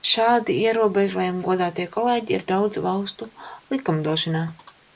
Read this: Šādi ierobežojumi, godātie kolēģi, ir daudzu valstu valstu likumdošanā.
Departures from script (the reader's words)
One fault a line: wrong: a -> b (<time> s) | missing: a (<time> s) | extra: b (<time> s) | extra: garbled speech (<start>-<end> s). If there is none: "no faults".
missing: valstu (3.3 s)